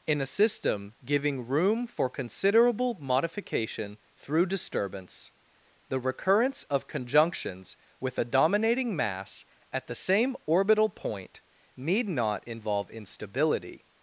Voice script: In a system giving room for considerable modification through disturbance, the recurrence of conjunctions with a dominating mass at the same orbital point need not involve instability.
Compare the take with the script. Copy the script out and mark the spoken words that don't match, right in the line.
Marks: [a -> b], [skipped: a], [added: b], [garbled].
In a system giving room for considerable modification through disturbance, the recurrence of conjunctions with a dominating mass at the same orbital point need not involve instability.